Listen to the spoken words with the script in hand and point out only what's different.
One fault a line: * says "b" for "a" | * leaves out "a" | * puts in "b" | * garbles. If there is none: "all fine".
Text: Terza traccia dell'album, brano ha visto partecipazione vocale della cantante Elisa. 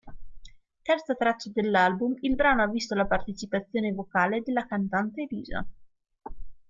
* puts in "il"
* puts in "la"